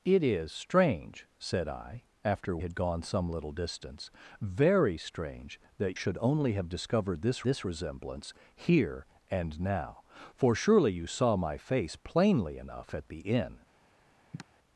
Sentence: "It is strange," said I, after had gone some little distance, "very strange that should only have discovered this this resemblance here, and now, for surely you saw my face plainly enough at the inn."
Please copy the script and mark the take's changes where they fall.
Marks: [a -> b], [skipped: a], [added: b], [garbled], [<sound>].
"It is strange," said I, after had gone some little distance, "very strange that should only have discovered this this resemblance here, and now, for surely you saw my face plainly enough at the inn." [sigh]